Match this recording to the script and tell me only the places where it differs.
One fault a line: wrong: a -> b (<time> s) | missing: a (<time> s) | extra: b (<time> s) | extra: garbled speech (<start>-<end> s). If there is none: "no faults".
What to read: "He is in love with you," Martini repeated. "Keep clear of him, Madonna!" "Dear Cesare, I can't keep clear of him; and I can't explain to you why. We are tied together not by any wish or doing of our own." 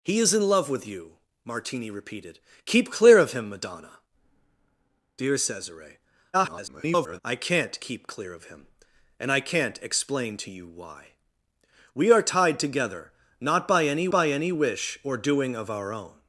extra: garbled speech (6.3-7.2 s)
extra: by any (14.1 s)